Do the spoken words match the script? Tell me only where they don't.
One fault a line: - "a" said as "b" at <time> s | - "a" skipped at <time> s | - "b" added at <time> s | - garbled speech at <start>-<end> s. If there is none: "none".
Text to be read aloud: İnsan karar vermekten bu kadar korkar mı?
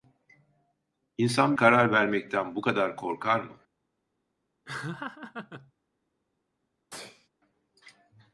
none